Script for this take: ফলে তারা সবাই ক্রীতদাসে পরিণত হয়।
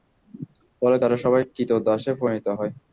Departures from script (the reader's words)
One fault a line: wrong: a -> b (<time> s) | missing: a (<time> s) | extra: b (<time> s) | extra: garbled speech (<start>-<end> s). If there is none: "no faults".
no faults